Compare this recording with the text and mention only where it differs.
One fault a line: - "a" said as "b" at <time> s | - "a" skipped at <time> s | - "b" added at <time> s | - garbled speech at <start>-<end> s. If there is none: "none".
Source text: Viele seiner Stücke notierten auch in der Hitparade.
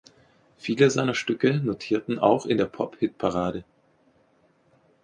- "Pop" added at 2.7 s